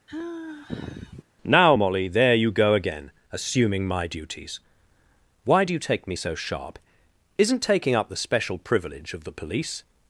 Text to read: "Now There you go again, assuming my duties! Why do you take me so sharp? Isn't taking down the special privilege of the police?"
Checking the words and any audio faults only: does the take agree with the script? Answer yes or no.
no